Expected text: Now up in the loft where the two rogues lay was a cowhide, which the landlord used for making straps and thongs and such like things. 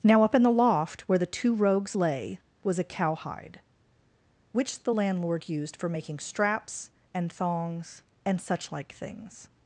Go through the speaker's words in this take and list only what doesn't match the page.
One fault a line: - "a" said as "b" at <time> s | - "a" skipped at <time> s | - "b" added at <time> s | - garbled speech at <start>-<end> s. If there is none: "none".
none